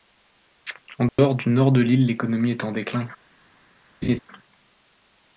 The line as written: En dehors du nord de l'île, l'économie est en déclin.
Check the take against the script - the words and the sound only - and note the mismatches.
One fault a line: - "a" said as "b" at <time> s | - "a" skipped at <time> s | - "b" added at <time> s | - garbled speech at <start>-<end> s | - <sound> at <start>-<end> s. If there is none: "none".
- dropout at 1.1-1.2 s
- laugh at 4.0-4.2 s